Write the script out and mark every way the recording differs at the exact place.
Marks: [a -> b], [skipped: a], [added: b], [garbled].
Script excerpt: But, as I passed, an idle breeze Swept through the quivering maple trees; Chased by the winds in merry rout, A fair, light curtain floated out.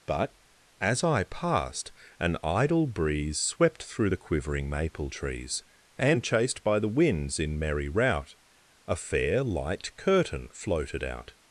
But, as I passed, an idle breeze Swept through the quivering maple trees; [added: and] Chased by the winds in merry rout, A fair, light curtain floated out.